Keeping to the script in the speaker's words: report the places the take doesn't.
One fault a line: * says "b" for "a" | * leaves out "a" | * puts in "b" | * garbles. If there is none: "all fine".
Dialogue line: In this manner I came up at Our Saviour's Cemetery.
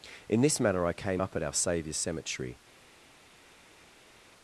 all fine